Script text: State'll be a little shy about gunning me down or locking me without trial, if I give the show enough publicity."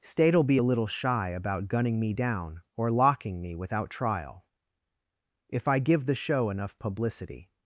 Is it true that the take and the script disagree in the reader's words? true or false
false